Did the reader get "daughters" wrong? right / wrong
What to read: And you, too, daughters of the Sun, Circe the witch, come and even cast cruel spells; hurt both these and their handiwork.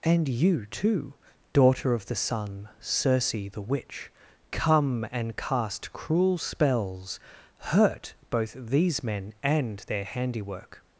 wrong